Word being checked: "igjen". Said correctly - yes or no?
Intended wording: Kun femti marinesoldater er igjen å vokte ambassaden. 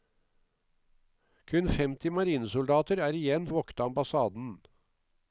yes